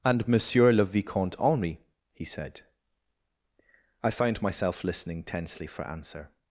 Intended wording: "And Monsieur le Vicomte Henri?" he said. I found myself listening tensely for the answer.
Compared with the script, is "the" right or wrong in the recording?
wrong